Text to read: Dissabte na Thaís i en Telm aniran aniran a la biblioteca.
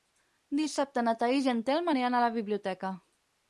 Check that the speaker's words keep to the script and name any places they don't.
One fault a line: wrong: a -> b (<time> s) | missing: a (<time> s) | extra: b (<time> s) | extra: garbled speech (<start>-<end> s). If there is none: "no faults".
missing: aniran (2.2 s)